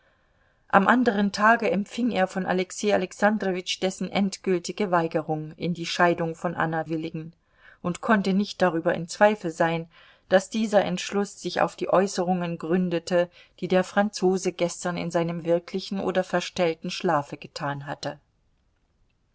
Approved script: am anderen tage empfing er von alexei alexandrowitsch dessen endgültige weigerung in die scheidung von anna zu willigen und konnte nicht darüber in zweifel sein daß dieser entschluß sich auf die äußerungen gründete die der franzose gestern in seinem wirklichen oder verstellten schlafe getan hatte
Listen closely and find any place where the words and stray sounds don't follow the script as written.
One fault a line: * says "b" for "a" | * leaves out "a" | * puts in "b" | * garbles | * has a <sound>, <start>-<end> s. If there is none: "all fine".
* leaves out "zu"